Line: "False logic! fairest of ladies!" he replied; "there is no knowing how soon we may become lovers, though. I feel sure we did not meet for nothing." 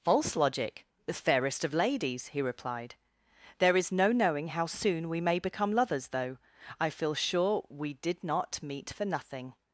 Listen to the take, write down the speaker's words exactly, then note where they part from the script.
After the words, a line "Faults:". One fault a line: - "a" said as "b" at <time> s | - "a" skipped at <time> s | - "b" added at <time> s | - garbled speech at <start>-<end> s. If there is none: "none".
"False logic! the fairest of ladies!" he replied; "there is no knowing how soon we may become lovers, though. I feel sure we did not meet for nothing."
Faults:
- "the" added at 1.1 s